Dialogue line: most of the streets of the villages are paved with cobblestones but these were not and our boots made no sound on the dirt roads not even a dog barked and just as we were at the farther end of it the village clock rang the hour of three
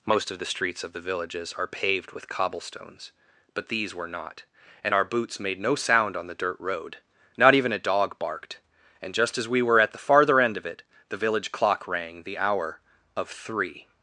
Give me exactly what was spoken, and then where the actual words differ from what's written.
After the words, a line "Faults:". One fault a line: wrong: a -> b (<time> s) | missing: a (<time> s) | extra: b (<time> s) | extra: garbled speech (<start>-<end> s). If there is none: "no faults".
most of the streets of the villages are paved with cobblestones but these were not and our boots made no sound on the dirt road not even a dog barked and just as we were at the farther end of it the village clock rang the hour of three
Faults:
wrong: roads -> road (6.6 s)